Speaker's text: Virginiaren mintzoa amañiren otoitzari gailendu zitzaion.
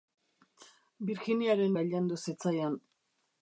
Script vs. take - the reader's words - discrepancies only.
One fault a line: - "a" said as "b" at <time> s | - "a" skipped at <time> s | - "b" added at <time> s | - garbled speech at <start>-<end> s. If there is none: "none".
- "mintzoa amañiren otoitzari" skipped at 1.8 s